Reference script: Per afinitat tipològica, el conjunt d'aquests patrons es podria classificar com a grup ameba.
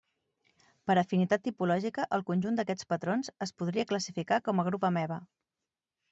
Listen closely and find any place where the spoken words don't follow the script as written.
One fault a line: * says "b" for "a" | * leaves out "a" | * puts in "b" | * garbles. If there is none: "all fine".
all fine